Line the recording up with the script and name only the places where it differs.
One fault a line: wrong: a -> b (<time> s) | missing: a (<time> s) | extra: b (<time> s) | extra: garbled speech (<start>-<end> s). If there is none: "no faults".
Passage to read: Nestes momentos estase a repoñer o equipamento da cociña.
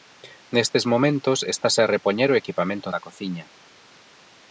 no faults